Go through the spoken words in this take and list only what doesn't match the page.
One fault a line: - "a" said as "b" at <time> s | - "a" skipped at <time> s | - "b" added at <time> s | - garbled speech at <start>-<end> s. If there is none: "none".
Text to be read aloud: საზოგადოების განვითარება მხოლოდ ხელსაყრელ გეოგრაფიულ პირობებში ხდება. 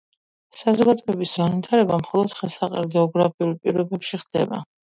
none